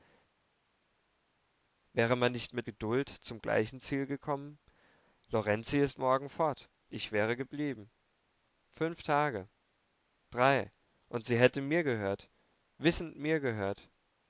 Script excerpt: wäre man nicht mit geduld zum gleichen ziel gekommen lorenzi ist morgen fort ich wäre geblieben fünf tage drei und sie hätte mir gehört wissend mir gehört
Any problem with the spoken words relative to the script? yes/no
no